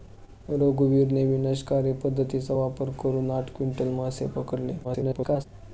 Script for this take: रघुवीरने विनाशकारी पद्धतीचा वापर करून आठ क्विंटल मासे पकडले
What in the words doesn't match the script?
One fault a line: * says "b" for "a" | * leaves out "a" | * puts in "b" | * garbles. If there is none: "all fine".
* garbles